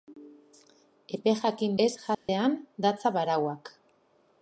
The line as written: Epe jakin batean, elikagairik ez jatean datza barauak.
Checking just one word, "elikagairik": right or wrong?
wrong